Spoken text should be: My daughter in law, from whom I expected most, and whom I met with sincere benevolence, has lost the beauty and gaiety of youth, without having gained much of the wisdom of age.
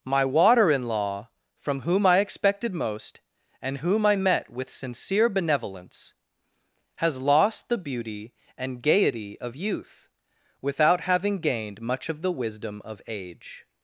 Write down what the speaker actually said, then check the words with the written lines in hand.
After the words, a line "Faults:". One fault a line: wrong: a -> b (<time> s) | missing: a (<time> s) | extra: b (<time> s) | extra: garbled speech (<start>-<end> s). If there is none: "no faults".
My water in law, from whom I expected most, and whom I met with sincere benevolence, has lost the beauty and gaiety of youth, without having gained much of the wisdom of age.
Faults:
wrong: daughter -> water (0.2 s)